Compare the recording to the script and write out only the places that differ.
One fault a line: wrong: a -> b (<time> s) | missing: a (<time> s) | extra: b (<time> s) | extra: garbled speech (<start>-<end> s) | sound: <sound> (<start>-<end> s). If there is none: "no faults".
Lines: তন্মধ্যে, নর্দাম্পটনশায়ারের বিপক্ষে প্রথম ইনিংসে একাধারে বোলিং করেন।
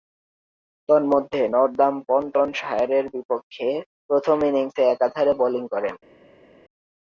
no faults